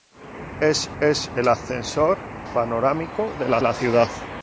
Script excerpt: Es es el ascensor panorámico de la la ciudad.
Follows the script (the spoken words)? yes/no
yes